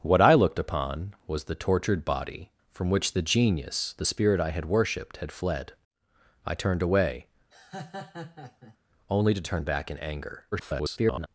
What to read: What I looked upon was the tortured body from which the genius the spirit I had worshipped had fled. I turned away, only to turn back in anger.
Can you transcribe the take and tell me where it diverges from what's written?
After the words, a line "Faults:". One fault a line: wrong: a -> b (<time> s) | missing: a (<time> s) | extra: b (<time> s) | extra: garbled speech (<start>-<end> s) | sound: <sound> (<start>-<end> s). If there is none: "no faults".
What I looked upon was the tortured body from which the genius the spirit I had worshipped had fled. I turned away, only to turn back in anger. [garbled]
Faults:
sound: laugh (7.5-8.8 s)
extra: garbled speech (10.5-11.3 s)